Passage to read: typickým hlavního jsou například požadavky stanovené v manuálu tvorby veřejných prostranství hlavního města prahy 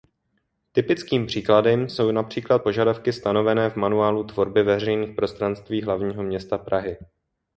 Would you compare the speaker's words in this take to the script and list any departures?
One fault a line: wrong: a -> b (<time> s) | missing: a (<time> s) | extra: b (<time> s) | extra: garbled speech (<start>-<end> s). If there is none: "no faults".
wrong: hlavního -> příkladem (1.2 s)